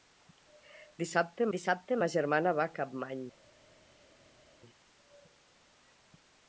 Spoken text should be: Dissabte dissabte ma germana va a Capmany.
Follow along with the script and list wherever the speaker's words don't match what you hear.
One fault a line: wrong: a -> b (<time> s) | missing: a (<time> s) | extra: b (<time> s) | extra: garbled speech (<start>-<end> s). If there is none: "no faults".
no faults